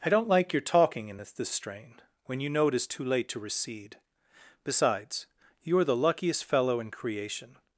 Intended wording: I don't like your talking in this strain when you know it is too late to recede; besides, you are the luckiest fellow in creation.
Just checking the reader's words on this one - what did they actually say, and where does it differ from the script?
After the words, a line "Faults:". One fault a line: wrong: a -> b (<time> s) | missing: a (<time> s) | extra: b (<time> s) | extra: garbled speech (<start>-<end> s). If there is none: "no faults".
I don't like your talking in this this strain when you know it is too late to recede; besides, you are the luckiest fellow in creation.
Faults:
extra: this (1.3 s)